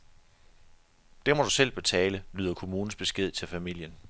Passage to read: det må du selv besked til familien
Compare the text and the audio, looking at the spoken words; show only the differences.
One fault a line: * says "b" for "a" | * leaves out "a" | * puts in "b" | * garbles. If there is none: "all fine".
* puts in "betale lyder kommunens"